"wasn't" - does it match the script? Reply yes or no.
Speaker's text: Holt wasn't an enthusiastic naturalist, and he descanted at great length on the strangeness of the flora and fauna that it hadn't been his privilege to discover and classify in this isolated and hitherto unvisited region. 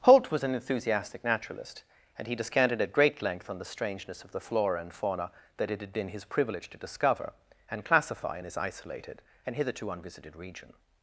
no